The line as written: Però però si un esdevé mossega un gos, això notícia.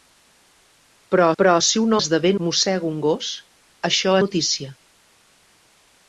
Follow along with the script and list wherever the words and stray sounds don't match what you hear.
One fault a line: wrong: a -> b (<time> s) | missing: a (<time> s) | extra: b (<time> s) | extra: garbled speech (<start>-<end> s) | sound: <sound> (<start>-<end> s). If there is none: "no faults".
no faults